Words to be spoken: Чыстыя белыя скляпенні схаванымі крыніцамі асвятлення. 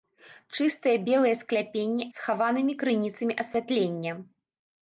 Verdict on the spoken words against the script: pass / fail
pass